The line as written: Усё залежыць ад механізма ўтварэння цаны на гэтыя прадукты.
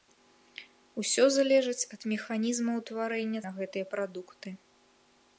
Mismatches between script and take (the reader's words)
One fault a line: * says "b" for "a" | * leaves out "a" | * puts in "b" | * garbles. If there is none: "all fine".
* leaves out "цаны"